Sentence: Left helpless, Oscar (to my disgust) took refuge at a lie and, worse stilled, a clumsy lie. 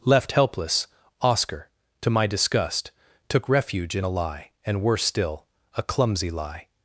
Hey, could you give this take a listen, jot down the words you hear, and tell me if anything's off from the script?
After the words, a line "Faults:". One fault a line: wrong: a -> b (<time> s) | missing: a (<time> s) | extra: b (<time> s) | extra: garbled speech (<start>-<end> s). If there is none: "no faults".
Left helpless, Oscar (to my disgust) took refuge in a lie and, worse still, a clumsy lie.
Faults:
wrong: at -> in (4.0 s)
wrong: stilled -> still (5.0 s)